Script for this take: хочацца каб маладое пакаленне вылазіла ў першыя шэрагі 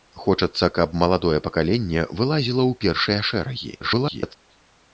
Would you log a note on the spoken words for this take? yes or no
yes